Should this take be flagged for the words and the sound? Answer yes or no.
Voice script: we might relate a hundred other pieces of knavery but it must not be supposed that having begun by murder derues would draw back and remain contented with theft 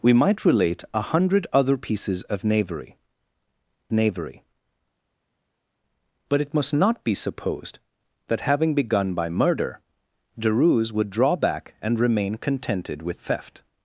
yes